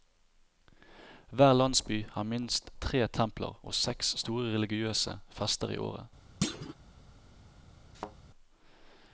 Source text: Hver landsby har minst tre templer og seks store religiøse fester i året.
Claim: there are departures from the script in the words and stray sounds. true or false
true